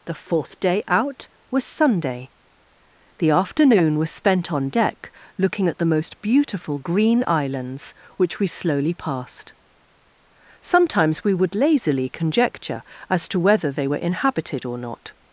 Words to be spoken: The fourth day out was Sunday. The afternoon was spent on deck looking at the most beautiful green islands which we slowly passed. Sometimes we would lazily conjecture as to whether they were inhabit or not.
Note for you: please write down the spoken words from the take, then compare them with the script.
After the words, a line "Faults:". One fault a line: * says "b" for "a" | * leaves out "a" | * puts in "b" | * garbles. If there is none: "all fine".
The fourth day out was Sunday. The afternoon was spent on deck looking at the most beautiful green islands which we slowly passed. Sometimes we would lazily conjecture as to whether they were inhabited or not.
Faults:
* says "inhabited" for "inhabit"